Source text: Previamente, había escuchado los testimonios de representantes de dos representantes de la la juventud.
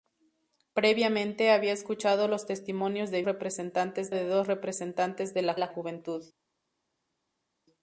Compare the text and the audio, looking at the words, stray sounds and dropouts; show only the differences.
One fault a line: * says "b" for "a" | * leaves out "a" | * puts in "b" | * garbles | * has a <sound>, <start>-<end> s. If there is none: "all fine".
all fine